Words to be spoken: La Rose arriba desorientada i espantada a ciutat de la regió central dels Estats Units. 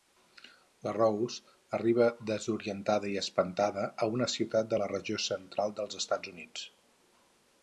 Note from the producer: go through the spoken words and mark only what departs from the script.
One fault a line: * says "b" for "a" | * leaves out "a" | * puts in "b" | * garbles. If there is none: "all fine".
* puts in "una"